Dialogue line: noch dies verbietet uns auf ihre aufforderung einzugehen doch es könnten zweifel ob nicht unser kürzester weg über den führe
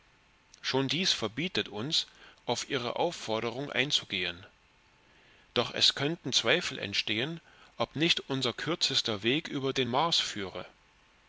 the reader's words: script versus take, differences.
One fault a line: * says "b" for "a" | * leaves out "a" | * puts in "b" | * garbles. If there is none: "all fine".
* says "schon" for "noch"
* puts in "entstehen"
* puts in "mars"